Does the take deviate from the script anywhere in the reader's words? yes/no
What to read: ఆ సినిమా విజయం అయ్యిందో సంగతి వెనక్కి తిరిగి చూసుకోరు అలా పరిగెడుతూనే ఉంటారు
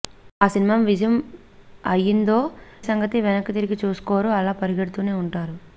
no